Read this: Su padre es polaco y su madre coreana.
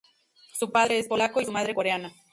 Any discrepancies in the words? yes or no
no